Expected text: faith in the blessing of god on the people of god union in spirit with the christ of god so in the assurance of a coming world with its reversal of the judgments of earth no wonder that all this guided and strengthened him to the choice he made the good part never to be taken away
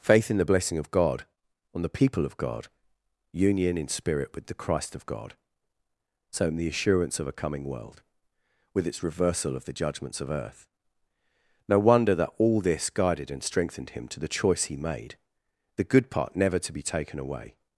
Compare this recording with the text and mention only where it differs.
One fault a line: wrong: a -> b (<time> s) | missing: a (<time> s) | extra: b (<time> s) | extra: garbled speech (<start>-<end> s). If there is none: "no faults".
no faults